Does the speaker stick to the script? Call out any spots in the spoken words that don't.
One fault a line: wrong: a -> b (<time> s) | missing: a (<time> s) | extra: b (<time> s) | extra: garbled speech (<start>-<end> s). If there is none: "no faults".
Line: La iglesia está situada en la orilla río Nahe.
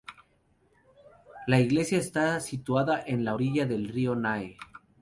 extra: del (3.6 s)